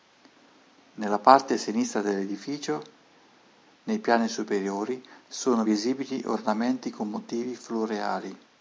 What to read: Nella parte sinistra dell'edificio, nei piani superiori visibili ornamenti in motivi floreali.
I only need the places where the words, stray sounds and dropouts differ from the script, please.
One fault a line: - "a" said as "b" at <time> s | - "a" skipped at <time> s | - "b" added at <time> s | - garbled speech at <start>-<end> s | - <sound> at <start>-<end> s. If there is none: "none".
- "sono" added at 5.3 s
- "in" said as "con" at 6.9 s